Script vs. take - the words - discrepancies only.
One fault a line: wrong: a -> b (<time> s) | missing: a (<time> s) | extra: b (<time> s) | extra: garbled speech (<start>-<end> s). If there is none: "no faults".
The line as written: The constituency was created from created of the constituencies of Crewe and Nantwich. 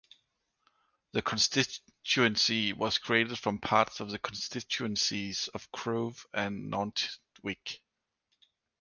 wrong: created -> parts (3.6 s)